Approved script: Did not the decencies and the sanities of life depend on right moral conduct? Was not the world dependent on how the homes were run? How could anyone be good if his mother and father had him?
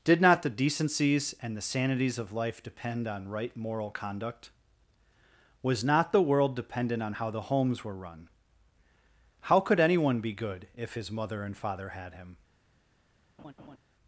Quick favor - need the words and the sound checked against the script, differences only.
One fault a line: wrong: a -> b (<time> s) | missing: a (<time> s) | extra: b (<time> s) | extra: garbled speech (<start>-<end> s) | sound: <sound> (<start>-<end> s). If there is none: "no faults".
sound: laugh (13.4-13.8 s)